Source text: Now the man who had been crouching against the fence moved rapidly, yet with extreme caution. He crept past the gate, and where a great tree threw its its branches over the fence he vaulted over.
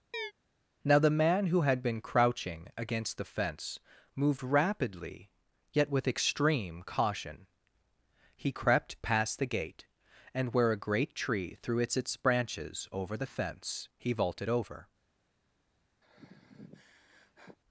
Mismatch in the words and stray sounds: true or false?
true